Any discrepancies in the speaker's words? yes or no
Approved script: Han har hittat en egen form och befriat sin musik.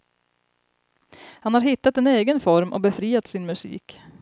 no